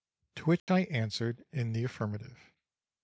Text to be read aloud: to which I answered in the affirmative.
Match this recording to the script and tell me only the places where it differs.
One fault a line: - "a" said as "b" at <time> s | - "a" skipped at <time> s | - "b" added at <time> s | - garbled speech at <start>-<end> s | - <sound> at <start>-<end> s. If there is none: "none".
- dropout at 0.6-0.7 s